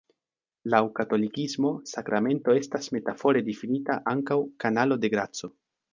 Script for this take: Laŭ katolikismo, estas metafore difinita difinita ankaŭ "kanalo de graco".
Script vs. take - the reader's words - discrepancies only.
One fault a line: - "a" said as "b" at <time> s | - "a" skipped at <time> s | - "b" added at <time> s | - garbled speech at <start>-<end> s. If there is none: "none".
- "sakramento" added at 1.9 s
- "difinita" skipped at 4.0 s